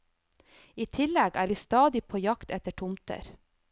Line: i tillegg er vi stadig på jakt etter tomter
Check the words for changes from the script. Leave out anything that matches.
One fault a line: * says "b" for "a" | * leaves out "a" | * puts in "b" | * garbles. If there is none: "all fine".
all fine